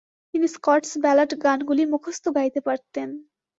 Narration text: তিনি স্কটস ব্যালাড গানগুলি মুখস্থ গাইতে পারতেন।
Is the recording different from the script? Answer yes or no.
no